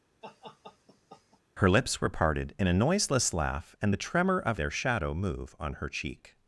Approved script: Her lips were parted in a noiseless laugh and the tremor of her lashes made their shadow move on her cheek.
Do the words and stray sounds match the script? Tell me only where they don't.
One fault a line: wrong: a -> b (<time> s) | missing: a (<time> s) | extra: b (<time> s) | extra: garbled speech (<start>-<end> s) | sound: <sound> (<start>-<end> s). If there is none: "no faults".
sound: laugh (0.2-1.4 s)
missing: her lashes made (4.6 s)